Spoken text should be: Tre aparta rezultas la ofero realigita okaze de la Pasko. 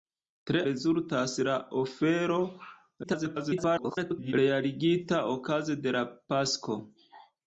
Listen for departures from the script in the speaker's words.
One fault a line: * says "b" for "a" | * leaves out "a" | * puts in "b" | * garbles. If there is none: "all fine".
* leaves out "aparta"
* garbles